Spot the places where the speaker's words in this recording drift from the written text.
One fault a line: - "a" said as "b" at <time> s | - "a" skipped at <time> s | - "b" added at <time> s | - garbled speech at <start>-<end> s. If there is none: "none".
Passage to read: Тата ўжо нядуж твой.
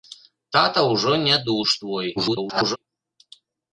- garbled speech at 2.2-2.8 s